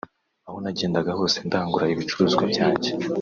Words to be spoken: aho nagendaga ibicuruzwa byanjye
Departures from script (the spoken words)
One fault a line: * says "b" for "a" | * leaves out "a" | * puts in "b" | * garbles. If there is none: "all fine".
* puts in "hose ndangura"